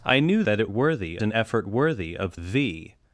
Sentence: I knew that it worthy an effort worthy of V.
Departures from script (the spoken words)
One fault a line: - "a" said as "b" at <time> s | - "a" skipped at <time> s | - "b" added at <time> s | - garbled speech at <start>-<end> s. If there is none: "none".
none